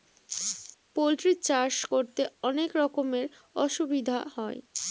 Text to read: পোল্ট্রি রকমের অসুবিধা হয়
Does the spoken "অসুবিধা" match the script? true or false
true